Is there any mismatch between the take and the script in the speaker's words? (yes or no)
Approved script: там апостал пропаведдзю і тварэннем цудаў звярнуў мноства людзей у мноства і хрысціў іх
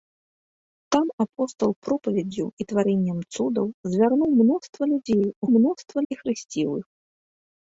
no